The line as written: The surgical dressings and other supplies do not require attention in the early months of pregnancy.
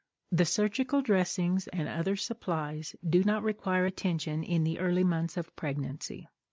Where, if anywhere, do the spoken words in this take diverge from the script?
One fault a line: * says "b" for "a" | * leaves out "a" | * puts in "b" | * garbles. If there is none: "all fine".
all fine